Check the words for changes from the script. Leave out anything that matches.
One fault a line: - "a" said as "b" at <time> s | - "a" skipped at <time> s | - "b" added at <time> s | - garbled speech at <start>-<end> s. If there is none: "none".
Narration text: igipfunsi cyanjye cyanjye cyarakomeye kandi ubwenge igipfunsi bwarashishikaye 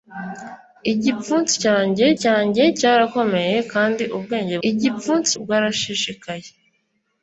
none